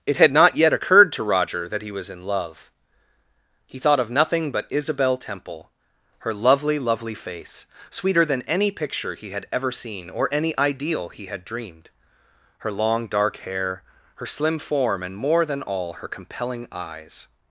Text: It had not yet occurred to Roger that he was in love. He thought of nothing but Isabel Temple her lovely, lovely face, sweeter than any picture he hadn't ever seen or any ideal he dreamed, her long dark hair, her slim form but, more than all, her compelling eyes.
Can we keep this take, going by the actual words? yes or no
no